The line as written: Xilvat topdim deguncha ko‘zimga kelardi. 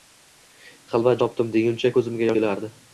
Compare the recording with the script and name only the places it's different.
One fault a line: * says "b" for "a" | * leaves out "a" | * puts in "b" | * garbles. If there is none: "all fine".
all fine